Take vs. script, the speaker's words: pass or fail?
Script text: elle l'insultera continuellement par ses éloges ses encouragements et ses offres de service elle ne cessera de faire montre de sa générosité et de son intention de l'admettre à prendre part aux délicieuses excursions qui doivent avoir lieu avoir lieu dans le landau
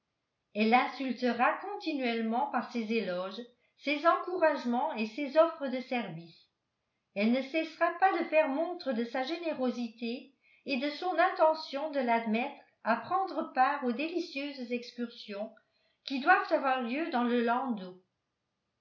fail